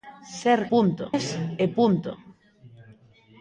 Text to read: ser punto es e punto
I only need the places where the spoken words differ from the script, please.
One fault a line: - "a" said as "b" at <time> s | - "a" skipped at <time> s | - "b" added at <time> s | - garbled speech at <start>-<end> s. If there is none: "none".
none